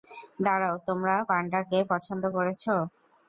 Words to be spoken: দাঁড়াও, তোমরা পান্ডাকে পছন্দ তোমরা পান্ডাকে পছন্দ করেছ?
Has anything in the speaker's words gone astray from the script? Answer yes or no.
yes